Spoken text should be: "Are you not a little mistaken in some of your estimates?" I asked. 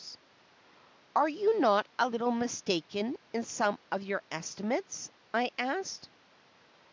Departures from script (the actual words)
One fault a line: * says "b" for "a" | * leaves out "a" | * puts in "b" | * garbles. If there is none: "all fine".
all fine